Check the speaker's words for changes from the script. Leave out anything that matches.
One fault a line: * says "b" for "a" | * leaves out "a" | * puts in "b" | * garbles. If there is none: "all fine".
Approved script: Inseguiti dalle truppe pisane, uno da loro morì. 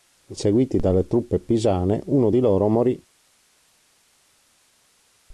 * says "di" for "da"